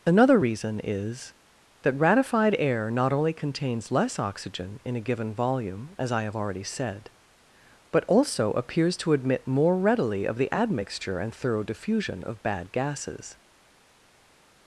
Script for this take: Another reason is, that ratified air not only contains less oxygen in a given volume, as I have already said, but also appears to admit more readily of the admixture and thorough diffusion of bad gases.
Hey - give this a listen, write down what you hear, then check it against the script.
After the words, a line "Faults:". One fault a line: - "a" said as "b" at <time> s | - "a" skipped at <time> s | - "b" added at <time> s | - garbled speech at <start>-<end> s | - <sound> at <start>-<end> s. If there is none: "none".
Another reason is, that ratified air not only contains less oxygen in a given volume, as I have already said, but also appears to admit more readily of the admixture and thorough diffusion of bad gases.
Faults:
none